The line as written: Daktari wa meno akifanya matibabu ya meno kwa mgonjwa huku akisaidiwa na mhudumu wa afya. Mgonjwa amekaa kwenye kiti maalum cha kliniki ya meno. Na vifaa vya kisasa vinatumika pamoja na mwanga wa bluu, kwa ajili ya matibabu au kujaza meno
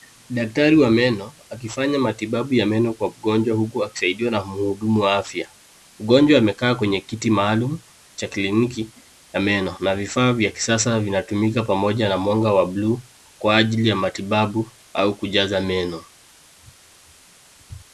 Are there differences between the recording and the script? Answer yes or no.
no